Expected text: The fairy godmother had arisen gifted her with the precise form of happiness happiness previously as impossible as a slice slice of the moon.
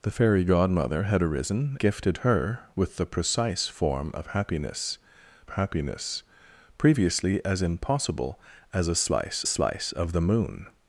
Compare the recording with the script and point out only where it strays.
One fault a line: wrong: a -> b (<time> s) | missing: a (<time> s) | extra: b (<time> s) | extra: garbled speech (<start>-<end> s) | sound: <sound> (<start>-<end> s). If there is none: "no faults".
no faults